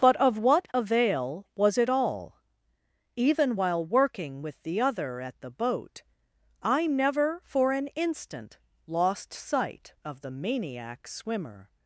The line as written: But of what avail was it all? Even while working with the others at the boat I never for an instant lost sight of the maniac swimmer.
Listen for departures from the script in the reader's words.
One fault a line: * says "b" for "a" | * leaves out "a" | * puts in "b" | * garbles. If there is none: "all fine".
* says "other" for "others"